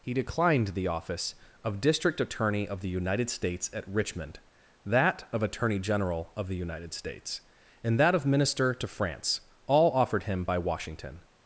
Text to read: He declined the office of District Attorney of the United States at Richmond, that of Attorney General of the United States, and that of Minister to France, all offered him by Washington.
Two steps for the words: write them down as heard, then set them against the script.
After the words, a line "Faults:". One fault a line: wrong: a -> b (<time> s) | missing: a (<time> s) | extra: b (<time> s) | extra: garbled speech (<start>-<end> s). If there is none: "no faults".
He declined the office of District Attorney of the United States at Richmond, that of Attorney General of the United States, and that of Minister to France, all offered him by Washington.
Faults:
no faults